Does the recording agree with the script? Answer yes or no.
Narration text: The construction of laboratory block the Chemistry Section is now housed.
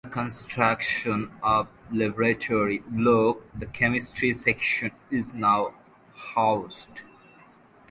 yes